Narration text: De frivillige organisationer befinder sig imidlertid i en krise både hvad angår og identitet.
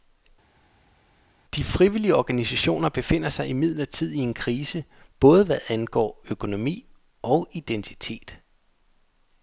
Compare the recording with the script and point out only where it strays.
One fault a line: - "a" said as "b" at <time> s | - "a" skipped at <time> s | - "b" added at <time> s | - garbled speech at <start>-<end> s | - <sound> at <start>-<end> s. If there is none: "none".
- "økonomi" added at 6.3 s